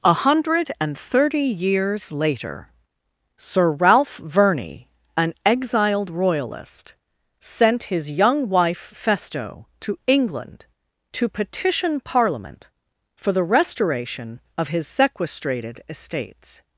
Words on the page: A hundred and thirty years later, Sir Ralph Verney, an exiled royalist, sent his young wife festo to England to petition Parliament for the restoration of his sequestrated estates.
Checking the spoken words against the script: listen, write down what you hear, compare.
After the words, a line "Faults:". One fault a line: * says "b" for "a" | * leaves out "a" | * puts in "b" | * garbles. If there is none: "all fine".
A hundred and thirty years later, Sir Ralph Verney, an exiled royalist, sent his young wife festo to England to petition Parliament for the restoration of his sequestrated estates.
Faults:
all fine